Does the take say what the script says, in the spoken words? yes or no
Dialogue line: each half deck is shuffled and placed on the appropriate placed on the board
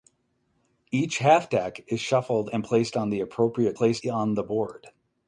yes